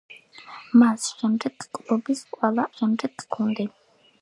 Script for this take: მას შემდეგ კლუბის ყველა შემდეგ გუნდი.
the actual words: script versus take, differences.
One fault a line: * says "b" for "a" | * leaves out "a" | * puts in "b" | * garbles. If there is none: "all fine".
all fine